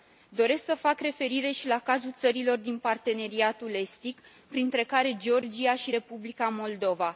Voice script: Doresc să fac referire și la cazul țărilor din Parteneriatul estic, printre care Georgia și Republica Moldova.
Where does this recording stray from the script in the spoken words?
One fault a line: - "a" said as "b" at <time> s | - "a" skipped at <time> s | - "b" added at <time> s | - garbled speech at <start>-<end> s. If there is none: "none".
none